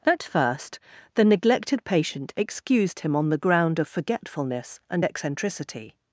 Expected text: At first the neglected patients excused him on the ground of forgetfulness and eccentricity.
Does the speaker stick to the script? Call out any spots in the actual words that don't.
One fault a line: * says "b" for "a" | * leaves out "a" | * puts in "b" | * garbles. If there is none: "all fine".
* says "patient" for "patients"